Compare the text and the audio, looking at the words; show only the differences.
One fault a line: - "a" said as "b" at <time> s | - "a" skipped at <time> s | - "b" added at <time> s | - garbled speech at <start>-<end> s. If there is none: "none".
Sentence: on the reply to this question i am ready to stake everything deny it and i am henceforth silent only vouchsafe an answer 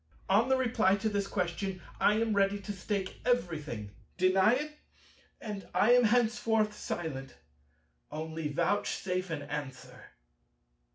none